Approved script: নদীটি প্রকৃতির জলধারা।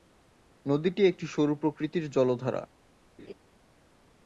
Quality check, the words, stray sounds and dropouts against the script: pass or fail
fail